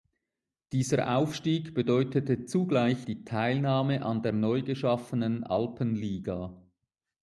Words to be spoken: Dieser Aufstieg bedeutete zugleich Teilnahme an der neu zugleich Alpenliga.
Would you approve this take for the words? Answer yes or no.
no